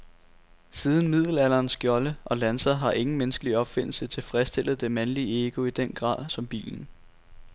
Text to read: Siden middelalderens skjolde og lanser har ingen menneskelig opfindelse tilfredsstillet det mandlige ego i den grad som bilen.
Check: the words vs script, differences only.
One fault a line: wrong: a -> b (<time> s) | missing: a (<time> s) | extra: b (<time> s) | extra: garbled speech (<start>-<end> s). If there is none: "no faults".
no faults